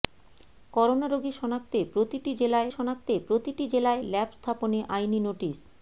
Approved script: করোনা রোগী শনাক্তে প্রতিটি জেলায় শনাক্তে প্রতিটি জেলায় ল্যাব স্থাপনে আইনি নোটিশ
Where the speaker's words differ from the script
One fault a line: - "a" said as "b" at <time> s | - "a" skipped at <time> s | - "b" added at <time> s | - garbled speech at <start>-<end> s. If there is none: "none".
none